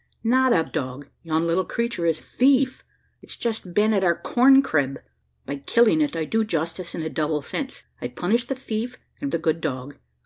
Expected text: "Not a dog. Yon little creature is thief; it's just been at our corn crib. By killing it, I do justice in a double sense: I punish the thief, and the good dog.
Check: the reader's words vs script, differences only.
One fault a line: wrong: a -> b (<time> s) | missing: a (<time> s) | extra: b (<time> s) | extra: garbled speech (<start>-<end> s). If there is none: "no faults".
no faults